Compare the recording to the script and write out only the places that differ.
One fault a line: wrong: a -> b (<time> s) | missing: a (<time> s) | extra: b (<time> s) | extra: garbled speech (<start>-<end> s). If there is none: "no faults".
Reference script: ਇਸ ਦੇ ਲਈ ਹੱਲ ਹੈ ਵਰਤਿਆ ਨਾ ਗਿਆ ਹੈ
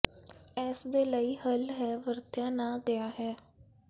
no faults